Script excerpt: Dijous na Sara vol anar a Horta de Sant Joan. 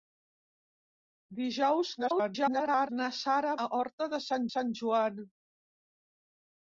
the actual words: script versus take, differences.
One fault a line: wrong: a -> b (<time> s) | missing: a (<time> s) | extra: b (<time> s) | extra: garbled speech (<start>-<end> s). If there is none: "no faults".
extra: garbled speech (2.0-2.9 s)
missing: vol anar (3.6 s)
extra: Sant (4.5 s)